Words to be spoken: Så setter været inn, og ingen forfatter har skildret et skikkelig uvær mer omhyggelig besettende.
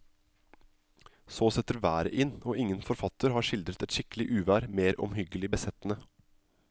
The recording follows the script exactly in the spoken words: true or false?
true